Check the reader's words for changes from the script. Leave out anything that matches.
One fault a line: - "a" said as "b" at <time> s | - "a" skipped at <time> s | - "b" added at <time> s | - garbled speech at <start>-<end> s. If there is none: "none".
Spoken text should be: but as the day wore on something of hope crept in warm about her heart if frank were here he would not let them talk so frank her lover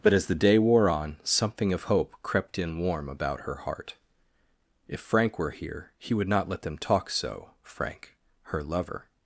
none